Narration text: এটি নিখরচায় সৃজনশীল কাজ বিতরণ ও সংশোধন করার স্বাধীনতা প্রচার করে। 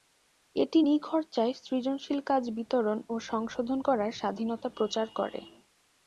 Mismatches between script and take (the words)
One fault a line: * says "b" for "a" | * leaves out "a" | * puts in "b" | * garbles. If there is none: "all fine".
all fine